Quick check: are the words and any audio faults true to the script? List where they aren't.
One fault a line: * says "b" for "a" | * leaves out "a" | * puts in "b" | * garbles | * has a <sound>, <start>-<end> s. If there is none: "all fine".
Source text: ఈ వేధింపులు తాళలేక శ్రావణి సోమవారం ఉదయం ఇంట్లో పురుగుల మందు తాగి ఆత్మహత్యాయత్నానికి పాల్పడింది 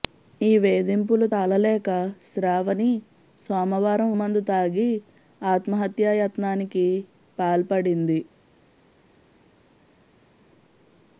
* leaves out "ఉదయం ఇంట్లో పురుగుల"